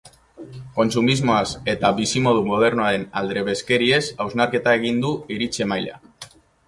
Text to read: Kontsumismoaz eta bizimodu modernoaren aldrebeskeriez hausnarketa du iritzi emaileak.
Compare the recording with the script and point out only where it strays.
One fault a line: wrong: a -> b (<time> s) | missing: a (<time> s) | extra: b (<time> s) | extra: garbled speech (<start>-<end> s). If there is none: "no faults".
extra: egin (4.8 s)